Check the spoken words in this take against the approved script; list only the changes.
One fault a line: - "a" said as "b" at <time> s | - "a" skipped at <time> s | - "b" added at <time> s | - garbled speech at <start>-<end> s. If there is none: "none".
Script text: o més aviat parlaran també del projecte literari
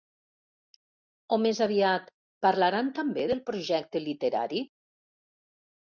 none